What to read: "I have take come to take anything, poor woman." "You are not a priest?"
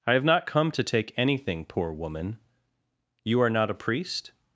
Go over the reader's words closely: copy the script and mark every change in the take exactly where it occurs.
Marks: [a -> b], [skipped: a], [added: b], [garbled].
"I have [take -> not] come to take anything, poor woman." "You are not a priest?"